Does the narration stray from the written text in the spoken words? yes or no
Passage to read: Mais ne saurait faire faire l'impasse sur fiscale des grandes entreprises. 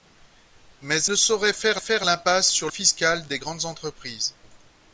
no